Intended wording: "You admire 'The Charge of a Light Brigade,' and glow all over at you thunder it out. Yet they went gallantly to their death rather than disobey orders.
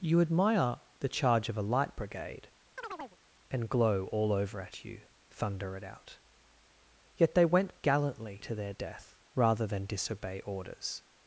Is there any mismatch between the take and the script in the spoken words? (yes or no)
no